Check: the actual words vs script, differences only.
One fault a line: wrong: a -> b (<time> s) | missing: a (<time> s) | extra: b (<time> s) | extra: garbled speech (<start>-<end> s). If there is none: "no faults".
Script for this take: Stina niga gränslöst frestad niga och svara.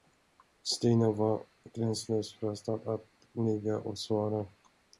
wrong: niga -> var (1.1 s)
extra: att (2.9 s)